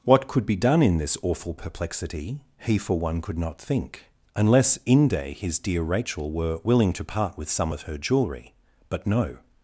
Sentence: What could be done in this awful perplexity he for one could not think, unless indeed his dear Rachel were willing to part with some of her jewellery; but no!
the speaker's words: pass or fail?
fail